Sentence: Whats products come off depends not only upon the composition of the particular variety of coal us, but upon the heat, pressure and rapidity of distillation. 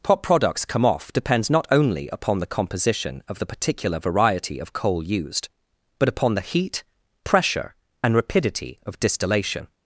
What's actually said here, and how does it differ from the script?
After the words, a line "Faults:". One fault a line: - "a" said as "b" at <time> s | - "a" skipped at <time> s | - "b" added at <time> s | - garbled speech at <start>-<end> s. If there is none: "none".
What products come off depends not only upon the composition of the particular variety of coal used, but upon the heat, pressure and rapidity of distillation.
Faults:
- "Whats" said as "What" at 0.1 s
- "us" said as "used" at 5.0 s